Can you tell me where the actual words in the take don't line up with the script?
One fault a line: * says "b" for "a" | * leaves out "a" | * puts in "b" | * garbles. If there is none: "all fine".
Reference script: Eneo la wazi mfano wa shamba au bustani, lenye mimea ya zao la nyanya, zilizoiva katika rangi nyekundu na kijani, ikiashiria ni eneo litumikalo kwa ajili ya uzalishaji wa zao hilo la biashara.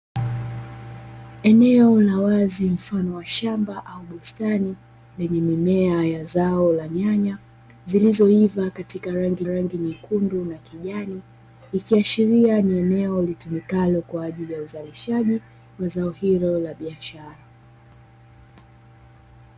* puts in "rangi"